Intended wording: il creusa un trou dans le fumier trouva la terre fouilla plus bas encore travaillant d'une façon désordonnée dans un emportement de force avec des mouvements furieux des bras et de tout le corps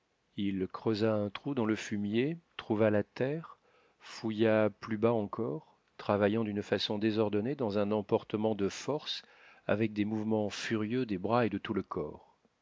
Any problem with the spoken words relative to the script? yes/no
no